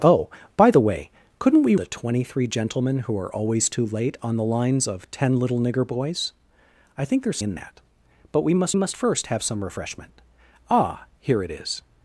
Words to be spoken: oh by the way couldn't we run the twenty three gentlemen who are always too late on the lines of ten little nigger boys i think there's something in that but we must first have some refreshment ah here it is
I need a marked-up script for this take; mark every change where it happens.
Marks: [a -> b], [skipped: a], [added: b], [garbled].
oh by the way couldn't we [skipped: run] the twenty three gentlemen who are always too late on the lines of ten little nigger boys i think there's [skipped: something] in that but we must [added: must] first have some refreshment ah here it is